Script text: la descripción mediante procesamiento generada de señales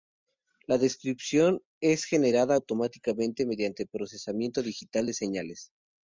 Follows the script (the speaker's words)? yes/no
no